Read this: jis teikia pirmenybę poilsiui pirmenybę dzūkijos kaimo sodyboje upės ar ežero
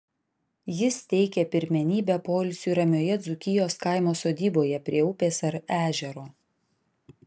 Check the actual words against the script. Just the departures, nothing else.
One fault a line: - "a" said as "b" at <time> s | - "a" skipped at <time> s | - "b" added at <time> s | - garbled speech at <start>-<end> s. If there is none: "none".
- "pirmenybę" said as "ramioje" at 2.8 s
- "prie" added at 4.9 s